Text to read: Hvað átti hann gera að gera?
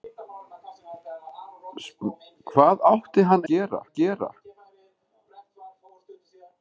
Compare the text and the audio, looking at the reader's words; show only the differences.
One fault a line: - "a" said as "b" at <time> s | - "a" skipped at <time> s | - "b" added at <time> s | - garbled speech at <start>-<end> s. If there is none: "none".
none